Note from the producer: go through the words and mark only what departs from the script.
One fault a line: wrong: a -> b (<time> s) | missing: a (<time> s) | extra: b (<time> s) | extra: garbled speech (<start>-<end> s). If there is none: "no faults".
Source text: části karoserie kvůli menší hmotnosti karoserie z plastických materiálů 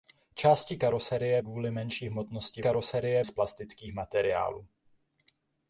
no faults